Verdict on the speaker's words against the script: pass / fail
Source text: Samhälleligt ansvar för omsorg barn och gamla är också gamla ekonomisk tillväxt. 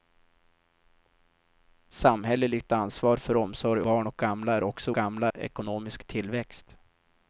pass